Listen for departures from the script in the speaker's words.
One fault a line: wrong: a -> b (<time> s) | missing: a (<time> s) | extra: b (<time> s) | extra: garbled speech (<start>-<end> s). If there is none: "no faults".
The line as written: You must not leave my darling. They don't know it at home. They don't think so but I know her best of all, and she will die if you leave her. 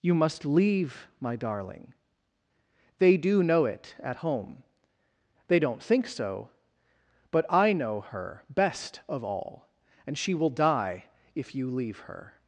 missing: not (0.5 s)
wrong: don't -> do (3.2 s)